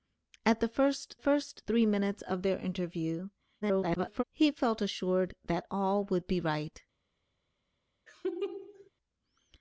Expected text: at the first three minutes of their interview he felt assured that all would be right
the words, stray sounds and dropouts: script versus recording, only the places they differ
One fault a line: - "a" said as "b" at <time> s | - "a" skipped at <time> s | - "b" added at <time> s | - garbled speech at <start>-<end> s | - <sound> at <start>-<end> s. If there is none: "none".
- "first" added at 1.2 s
- garbled speech at 3.6-4.2 s
- laugh at 8.1-8.9 s